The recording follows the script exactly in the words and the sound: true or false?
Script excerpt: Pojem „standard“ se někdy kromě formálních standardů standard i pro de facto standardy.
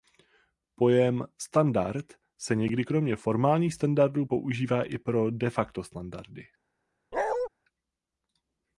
false